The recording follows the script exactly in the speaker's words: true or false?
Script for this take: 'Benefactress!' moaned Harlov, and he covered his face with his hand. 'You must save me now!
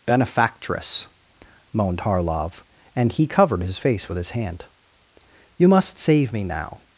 true